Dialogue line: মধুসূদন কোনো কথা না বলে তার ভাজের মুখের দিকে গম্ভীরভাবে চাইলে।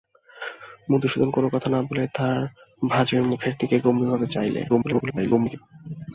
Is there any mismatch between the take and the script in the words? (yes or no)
yes